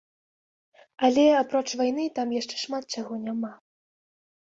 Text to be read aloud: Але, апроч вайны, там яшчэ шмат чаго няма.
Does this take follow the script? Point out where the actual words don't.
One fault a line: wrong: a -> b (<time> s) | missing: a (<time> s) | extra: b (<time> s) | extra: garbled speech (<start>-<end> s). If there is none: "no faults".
no faults